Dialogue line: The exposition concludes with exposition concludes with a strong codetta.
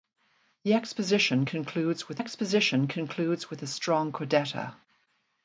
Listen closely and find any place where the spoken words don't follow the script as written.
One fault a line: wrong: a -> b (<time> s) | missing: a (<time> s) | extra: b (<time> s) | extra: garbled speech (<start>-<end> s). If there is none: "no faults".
no faults